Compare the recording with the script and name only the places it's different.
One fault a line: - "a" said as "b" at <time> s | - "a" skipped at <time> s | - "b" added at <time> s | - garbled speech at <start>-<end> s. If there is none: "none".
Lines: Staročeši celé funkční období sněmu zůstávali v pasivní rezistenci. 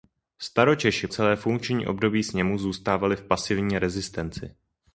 none